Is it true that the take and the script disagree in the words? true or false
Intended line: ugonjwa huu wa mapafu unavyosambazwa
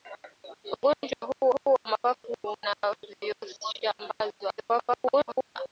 true